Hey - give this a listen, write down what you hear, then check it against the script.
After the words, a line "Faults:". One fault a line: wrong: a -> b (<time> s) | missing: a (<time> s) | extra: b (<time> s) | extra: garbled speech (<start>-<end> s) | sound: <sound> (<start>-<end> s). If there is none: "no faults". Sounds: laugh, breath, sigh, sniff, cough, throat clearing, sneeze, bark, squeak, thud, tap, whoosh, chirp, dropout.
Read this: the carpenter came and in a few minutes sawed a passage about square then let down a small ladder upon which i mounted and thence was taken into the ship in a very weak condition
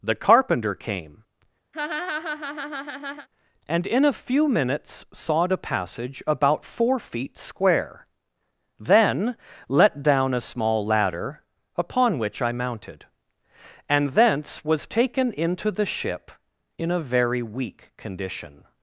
the carpenter came and in a few minutes sawed a passage about four feet square then let down a small ladder upon which i mounted and thence was taken into the ship in a very weak condition
Faults:
sound: laugh (1.7-3.3 s)
extra: four feet (6.6 s)